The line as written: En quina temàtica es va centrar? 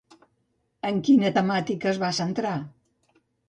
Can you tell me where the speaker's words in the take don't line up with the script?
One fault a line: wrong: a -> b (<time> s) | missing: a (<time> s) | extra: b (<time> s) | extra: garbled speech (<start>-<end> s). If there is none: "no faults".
no faults